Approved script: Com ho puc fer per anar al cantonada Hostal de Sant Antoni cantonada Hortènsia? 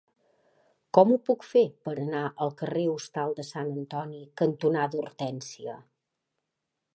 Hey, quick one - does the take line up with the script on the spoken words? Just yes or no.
no